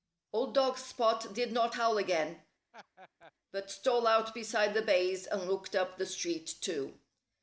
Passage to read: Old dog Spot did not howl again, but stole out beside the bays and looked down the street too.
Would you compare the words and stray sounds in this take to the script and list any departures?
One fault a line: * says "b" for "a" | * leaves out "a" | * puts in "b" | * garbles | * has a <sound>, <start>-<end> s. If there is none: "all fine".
* has a laugh, 2.7-3.3 s
* says "up" for "down"